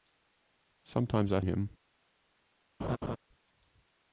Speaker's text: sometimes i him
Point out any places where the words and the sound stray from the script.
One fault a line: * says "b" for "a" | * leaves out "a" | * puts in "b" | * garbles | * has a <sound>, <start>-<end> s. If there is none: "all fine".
* has a laugh, 2.8-3.2 s